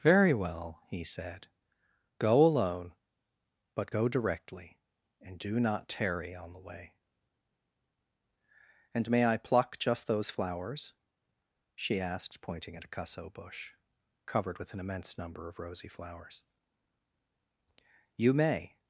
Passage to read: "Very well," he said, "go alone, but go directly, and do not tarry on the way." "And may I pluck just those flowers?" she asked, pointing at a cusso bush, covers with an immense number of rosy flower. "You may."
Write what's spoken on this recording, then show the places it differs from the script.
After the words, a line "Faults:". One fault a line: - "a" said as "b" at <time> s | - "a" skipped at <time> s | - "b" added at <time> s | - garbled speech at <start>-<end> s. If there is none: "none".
"Very well," he said, "go alone, but go directly, and do not tarry on the way." "And may I pluck just those flowers?" she asked, pointing at a cusso bush, covered with an immense number of rosy flowers. "You may."
Faults:
- "covers" said as "covered" at 14.2 s
- "flower" said as "flowers" at 15.9 s